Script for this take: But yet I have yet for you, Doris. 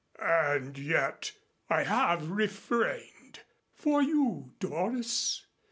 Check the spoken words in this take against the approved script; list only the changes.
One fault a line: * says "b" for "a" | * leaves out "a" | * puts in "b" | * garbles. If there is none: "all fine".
* says "And" for "But"
* says "refrained" for "yet"